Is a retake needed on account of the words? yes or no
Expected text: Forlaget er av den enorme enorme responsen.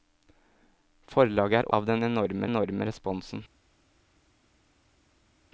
no